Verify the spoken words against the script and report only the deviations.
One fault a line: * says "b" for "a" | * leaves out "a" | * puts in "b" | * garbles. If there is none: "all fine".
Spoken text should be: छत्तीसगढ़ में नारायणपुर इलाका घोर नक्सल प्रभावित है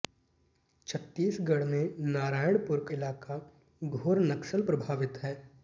all fine